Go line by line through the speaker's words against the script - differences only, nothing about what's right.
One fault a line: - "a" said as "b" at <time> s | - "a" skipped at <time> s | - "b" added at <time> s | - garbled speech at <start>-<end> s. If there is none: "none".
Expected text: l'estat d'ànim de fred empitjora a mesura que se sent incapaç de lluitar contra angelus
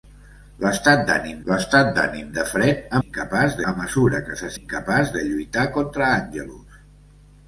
- "l'estat d'ànim" added at 1.5 s
- "empitjora" said as "incapaç" at 3.0 s
- "sent" skipped at 4.5 s